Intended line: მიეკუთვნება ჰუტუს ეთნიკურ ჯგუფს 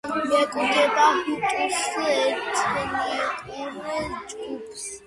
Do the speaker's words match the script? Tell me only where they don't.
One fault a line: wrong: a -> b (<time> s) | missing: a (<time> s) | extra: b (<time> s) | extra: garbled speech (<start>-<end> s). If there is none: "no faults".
no faults